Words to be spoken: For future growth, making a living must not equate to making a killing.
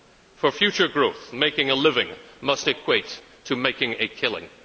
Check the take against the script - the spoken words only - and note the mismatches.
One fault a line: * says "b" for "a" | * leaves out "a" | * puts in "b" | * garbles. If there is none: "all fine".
* leaves out "not"